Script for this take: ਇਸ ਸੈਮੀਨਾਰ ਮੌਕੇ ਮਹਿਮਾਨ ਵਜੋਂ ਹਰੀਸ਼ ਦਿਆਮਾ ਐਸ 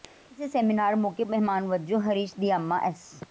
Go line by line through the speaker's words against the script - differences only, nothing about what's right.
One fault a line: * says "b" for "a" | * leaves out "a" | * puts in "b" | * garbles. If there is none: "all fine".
all fine